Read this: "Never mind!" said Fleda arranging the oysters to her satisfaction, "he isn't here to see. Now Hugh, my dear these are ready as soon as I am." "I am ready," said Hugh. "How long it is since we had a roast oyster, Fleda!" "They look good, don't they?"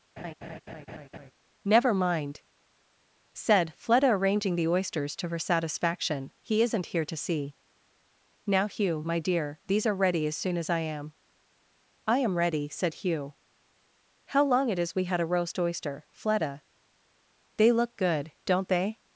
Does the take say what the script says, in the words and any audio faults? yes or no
no